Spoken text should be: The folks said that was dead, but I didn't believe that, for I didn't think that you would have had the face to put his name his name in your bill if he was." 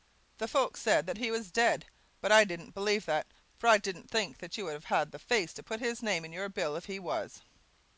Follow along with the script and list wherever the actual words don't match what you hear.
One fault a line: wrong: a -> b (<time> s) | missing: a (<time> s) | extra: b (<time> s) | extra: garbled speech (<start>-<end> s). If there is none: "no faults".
extra: he (1.2 s)
missing: his name (6.2 s)